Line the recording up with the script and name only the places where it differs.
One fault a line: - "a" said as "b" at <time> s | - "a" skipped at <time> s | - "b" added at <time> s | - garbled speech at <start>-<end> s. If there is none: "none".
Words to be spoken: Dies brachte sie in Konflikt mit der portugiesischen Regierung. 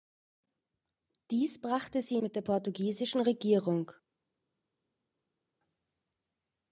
- "in Konflikt" skipped at 2.2 s